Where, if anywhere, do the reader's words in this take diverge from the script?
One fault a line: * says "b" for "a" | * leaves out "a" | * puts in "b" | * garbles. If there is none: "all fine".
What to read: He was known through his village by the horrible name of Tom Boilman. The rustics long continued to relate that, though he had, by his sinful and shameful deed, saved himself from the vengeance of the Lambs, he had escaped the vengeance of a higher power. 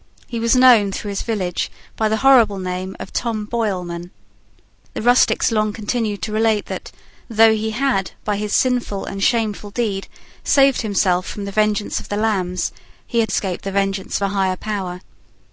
all fine